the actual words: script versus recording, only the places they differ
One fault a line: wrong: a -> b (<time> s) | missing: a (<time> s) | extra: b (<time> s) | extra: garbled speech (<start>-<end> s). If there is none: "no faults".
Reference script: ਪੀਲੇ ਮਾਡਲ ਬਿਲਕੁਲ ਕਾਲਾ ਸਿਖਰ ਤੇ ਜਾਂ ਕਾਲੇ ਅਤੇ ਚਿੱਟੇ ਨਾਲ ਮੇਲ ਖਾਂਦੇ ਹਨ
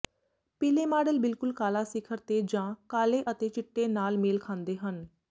no faults